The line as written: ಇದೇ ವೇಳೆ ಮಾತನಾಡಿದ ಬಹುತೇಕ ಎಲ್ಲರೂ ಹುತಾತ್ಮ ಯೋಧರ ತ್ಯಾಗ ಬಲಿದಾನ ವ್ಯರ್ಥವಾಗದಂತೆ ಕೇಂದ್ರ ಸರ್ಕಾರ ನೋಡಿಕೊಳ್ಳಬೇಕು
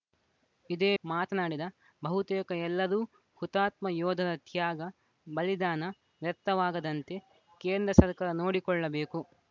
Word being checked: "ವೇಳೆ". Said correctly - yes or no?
no